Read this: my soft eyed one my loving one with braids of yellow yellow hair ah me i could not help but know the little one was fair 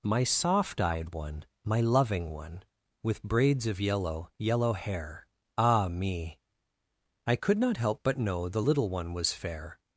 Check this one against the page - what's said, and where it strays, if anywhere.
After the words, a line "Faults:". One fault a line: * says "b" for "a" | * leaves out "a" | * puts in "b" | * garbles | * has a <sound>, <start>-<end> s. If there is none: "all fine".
my soft eyed one my loving one with braids of yellow yellow hair ah me i could not help but know the little one was fair
Faults:
all fine